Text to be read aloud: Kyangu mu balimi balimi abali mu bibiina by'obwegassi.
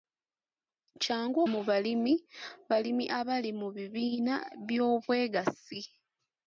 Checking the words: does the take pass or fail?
pass